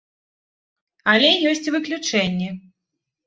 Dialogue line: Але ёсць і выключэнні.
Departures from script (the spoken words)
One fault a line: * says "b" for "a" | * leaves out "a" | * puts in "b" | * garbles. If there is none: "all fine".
all fine